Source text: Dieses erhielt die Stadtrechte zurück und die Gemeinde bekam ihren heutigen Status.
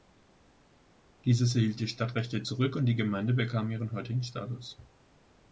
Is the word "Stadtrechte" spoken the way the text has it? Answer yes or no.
yes